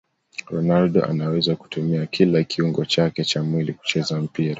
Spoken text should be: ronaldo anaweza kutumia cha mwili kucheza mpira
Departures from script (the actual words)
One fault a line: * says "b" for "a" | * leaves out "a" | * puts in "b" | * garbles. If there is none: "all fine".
* puts in "kila kiungo chake"